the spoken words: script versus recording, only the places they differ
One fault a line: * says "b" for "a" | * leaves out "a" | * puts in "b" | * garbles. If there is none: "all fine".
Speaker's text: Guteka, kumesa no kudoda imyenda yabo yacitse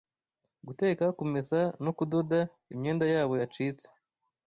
all fine